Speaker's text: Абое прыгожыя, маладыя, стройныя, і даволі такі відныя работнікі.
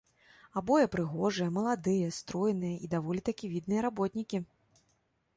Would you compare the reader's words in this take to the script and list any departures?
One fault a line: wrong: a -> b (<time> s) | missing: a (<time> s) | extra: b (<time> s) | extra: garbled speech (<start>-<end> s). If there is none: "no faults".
no faults